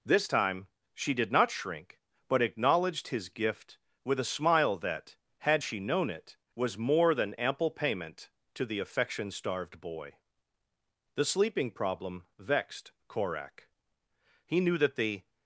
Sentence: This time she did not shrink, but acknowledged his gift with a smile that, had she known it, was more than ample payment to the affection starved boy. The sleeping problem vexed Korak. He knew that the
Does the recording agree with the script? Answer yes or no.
yes